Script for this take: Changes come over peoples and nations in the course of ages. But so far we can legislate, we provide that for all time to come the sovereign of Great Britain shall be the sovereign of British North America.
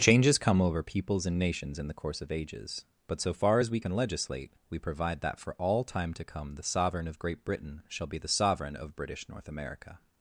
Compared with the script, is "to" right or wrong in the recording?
right